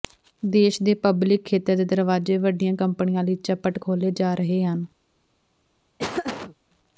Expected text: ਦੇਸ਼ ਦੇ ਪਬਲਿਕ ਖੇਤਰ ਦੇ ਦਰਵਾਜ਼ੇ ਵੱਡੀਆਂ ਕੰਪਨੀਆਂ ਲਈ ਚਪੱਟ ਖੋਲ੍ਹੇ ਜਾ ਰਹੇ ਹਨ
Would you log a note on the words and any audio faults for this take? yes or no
yes